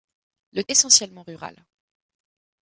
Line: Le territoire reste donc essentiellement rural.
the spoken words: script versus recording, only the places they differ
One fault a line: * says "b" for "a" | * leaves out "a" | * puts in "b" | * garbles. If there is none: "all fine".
* leaves out "territoire reste donc"